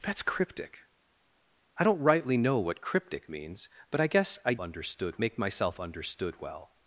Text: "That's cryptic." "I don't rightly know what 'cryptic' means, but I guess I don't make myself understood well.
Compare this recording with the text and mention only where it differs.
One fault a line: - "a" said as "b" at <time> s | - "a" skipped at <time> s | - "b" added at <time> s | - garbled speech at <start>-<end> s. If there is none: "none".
- "don't" said as "understood" at 4.6 s